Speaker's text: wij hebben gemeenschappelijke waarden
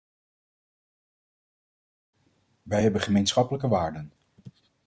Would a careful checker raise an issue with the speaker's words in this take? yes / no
no